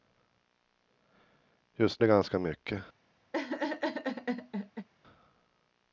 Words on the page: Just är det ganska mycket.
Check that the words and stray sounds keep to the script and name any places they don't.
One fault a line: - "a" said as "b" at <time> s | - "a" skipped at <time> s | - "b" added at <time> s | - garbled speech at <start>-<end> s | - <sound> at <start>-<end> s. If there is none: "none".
- laugh at 3.3-4.9 s